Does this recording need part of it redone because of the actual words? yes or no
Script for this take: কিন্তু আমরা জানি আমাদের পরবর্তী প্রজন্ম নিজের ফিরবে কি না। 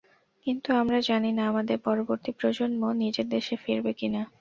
yes